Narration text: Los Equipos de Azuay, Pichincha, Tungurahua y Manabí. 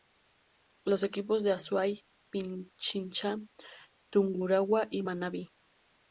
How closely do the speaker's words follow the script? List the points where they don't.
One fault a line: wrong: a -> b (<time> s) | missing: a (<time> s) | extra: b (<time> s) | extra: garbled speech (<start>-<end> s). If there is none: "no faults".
no faults